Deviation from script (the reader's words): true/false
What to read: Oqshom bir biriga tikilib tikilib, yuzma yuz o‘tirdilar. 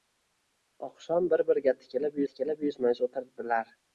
false